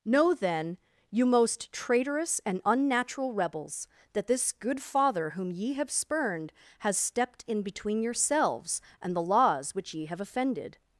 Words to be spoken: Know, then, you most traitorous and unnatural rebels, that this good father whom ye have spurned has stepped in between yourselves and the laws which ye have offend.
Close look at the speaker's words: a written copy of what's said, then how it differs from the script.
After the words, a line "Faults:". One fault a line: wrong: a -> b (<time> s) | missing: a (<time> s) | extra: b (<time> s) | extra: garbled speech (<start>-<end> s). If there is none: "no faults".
Know, then, you most traitorous and unnatural rebels, that this good father whom ye have spurned has stepped in between yourselves and the laws which ye have offended.
Faults:
wrong: offend -> offended (10.2 s)